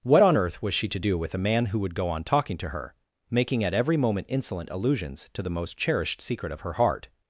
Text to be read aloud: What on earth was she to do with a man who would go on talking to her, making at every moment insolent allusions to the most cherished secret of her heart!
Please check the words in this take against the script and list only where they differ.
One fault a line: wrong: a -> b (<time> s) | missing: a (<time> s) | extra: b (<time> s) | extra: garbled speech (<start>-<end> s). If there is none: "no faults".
no faults